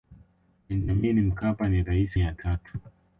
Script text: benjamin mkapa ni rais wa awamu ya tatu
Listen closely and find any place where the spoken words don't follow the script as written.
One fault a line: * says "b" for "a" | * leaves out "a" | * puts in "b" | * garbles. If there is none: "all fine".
* leaves out "wa awamu"